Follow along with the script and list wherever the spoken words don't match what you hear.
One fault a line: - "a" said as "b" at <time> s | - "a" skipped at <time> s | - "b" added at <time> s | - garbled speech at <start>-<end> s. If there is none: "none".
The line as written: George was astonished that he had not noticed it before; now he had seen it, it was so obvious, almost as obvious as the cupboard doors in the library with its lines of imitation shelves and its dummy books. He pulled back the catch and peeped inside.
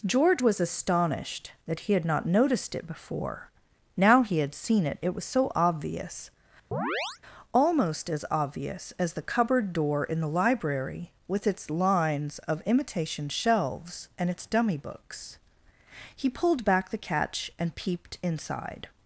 - "doors" said as "door" at 9.7 s